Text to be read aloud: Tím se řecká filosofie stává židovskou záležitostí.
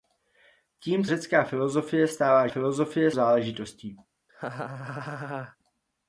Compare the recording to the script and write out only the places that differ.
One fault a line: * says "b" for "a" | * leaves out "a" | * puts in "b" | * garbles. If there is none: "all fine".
* leaves out "se"
* says "filosofie" for "židovskou"